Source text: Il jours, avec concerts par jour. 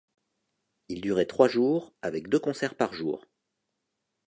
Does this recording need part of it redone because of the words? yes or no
yes